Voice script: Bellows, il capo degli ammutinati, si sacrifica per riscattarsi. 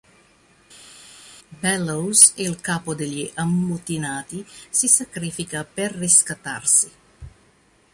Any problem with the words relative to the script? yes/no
no